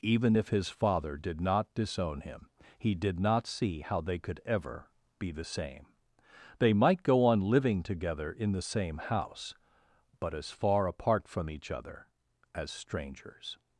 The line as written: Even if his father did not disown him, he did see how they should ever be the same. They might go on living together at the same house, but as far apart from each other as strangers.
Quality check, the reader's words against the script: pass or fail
fail